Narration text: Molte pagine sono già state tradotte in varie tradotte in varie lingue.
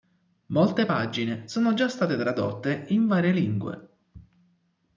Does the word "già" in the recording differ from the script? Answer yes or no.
no